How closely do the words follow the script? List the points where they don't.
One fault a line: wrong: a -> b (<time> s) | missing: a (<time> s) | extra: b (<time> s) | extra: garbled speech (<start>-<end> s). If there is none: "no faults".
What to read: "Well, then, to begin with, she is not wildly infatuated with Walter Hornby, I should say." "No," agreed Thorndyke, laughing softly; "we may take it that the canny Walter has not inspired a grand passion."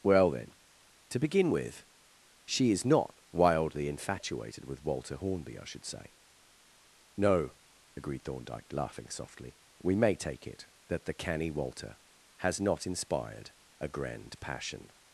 no faults